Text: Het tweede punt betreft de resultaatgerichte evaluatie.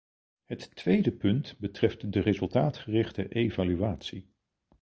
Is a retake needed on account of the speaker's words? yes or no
no